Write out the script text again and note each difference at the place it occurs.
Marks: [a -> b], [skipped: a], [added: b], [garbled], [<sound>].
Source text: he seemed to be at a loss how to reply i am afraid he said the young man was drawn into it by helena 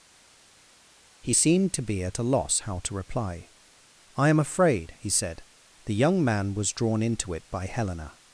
he seemed to be at a loss how to reply i am afraid he said the young man was drawn into it by helena